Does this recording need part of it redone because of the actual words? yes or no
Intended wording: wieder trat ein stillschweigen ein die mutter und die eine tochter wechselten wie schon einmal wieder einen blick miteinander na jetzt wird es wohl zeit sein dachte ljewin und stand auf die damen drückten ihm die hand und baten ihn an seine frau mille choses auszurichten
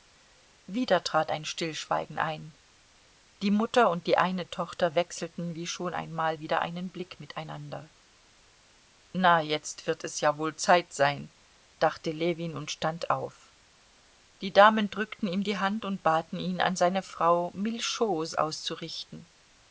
yes